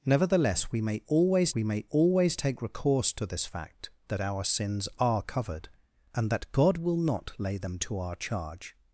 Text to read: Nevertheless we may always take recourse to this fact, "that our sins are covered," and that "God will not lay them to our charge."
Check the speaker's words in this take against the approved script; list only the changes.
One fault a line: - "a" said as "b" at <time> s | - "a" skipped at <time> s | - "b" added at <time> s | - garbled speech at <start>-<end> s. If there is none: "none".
- "we may always" added at 1.5 s